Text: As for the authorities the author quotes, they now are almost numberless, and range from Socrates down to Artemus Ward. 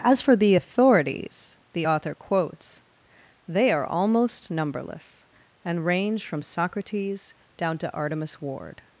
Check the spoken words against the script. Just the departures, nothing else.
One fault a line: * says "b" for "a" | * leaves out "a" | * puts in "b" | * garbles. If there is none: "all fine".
* leaves out "now"